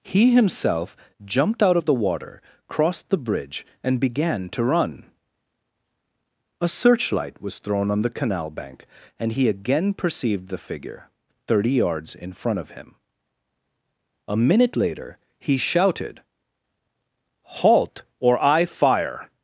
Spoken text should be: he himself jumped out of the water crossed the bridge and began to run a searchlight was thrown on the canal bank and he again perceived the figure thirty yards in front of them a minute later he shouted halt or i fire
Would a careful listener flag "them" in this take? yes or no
yes